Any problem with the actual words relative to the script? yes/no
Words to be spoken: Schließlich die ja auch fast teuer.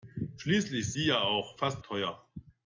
no